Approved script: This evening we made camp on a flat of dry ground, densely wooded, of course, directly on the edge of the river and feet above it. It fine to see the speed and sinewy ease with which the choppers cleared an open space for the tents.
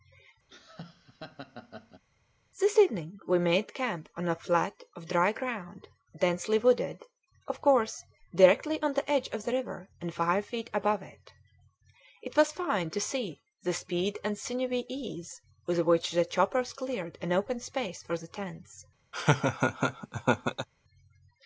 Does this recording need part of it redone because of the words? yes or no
yes